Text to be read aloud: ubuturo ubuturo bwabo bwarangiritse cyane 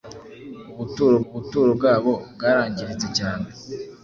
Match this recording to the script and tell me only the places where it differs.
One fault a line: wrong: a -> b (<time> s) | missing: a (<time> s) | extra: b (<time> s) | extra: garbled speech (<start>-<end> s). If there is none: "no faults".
no faults